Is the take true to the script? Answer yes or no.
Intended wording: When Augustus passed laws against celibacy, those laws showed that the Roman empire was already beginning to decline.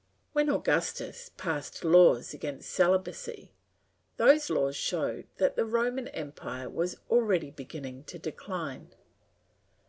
yes